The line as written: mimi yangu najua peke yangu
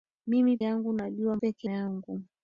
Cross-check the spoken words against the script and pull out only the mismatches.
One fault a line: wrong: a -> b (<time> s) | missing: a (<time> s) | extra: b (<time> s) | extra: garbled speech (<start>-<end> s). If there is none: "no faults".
no faults